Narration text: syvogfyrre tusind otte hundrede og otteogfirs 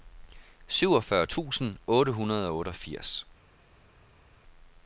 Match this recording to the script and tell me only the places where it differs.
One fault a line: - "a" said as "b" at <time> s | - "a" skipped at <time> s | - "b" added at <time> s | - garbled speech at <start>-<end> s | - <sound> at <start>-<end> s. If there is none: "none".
none